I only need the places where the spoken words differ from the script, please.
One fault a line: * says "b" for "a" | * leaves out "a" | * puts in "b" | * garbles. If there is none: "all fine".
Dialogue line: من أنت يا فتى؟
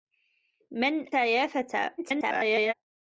* leaves out "أنت"
* garbles